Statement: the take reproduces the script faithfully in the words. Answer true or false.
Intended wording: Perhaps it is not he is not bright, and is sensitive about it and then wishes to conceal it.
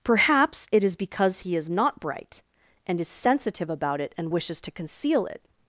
false